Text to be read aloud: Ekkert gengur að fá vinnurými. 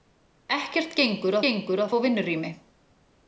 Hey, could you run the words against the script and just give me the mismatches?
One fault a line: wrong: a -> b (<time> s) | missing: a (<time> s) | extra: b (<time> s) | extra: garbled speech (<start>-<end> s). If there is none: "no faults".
extra: gengur (1.5 s)